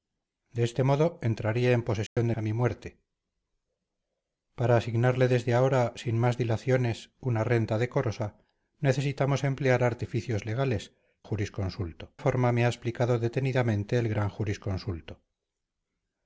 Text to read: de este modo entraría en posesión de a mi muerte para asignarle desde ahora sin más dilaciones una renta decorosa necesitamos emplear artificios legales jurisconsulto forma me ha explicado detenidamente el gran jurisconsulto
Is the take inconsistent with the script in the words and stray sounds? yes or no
yes